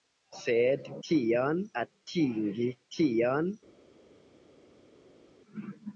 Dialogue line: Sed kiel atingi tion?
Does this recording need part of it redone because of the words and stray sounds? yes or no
yes